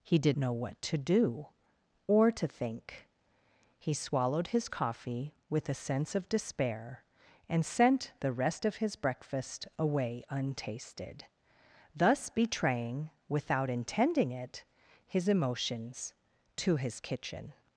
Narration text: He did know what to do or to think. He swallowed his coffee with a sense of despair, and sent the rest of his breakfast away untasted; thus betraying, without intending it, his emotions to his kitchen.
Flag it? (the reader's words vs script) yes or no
no